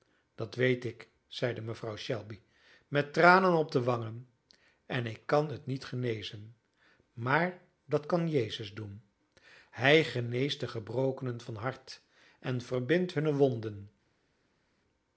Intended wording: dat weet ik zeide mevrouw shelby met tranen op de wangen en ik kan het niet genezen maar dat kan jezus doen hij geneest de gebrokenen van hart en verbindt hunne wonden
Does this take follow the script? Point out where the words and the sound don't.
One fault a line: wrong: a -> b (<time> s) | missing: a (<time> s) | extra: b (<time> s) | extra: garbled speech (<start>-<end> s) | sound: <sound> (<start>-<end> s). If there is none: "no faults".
no faults